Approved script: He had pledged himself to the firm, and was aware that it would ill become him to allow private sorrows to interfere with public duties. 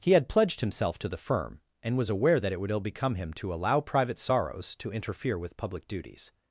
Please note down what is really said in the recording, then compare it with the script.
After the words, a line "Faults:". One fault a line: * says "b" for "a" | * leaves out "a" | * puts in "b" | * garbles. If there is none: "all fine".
He had pledged himself to the firm, and was aware that it would ill become him to allow private sorrows to interfere with public duties.
Faults:
all fine